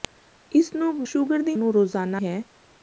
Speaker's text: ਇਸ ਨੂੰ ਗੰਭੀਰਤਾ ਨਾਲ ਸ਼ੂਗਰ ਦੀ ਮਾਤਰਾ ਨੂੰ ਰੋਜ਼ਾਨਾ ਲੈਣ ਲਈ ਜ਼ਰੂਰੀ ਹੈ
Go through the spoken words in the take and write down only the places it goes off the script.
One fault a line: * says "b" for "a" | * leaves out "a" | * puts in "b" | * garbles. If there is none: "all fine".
* leaves out "ਗੰਭੀਰਤਾ ਨਾਲ"
* leaves out "ਮਾਤਰਾ"
* leaves out "ਲੈਣ ਲਈ ਜ਼ਰੂਰੀ"